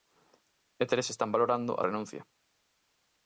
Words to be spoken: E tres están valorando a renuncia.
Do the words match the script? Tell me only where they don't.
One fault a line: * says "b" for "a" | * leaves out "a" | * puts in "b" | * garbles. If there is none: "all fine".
all fine